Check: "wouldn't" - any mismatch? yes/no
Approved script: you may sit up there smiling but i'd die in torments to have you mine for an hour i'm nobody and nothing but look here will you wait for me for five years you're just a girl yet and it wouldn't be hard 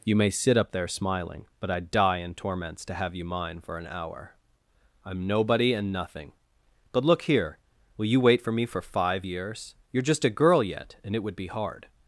yes